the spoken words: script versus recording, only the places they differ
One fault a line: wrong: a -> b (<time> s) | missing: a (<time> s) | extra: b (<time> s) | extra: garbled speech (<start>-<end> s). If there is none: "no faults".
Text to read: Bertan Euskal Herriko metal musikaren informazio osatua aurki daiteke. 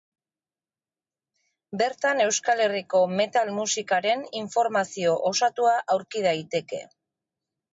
no faults